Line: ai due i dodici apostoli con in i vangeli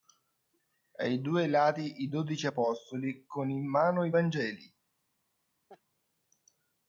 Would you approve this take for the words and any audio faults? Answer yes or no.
no